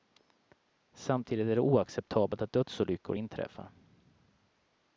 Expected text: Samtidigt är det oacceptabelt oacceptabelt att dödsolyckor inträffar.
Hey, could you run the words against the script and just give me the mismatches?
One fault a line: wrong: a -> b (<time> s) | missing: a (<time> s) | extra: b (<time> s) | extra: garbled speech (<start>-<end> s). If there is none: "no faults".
missing: oacceptabelt (2.4 s)